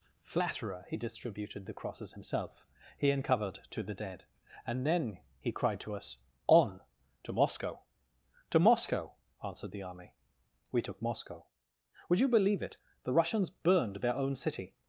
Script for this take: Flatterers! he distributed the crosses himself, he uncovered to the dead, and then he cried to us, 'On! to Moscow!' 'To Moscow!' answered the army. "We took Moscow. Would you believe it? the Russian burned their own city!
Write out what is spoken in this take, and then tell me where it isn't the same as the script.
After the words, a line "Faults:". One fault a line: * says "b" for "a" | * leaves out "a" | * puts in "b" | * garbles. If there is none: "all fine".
Flatterer! he distributed the crosses himself, he uncovered to the dead, and then he cried to us, 'On! to Moscow!' 'To Moscow!' answered the army. "We took Moscow. Would you believe it? the Russians burned their own city!
Faults:
* says "Flatterer" for "Flatterers"
* says "Russians" for "Russian"